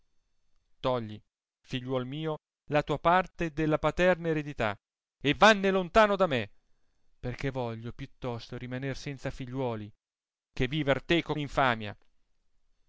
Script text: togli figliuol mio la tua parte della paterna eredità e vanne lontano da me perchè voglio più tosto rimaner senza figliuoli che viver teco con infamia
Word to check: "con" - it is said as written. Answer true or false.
false